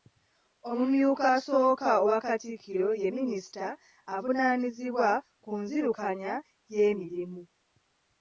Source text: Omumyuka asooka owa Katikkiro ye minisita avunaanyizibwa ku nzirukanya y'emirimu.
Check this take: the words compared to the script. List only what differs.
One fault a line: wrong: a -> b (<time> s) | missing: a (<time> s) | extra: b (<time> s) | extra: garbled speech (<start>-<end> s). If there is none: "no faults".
no faults